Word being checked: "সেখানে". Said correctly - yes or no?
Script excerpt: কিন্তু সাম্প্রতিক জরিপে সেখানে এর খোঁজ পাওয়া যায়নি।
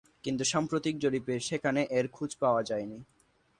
yes